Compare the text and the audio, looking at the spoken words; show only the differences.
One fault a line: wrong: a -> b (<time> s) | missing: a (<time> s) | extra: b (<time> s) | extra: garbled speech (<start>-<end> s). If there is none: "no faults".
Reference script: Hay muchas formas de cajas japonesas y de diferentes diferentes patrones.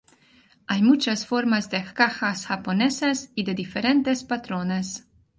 missing: diferentes (4.2 s)